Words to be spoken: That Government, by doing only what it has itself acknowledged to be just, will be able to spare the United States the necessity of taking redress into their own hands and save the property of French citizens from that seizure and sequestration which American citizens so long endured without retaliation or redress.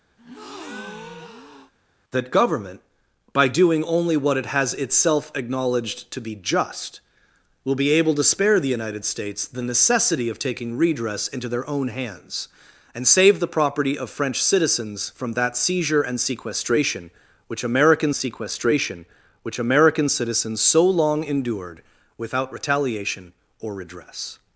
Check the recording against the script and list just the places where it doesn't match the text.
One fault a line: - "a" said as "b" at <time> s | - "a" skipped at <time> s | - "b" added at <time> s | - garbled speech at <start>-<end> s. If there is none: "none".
- "sequestration which American" added at 18.2 s